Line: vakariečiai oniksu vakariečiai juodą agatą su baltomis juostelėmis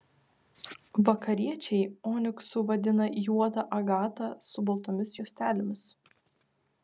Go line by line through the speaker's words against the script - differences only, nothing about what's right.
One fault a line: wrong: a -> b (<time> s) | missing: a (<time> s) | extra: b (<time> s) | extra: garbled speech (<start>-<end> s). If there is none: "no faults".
wrong: vakariečiai -> vadina (2.7 s)